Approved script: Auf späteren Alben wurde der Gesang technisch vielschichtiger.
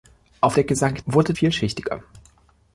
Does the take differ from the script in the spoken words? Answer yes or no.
yes